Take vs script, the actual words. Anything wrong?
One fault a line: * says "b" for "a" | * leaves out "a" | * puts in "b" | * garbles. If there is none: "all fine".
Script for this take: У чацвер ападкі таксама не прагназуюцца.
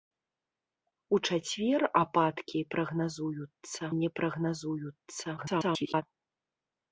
* says "прагназуюцца" for "таксама"
* garbles